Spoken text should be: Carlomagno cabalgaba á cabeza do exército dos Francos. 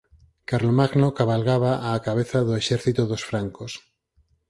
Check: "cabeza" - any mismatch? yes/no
no